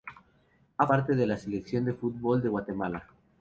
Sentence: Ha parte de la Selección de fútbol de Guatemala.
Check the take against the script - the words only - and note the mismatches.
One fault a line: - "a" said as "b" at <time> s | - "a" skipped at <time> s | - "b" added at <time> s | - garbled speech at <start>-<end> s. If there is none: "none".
none